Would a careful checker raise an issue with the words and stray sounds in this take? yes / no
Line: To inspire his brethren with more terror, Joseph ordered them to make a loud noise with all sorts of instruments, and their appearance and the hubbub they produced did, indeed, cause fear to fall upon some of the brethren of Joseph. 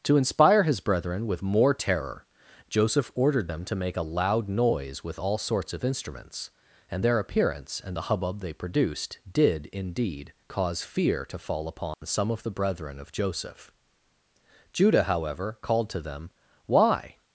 yes